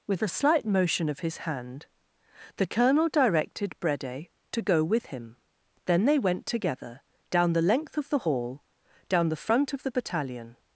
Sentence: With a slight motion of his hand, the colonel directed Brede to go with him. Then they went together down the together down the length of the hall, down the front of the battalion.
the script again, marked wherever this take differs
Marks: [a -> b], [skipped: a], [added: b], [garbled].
With a slight motion of his hand, the colonel directed Brede to go with him. Then they went together down the [skipped: together down the] length of the hall, down the front of the battalion.